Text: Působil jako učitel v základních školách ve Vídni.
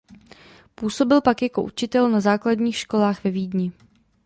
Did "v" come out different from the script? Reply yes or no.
yes